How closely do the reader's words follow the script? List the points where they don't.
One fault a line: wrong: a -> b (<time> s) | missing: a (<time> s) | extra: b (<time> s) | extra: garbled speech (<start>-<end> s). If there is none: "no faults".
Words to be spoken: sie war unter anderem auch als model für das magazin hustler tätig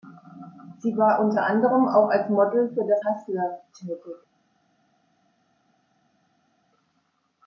missing: magazin (3.0 s)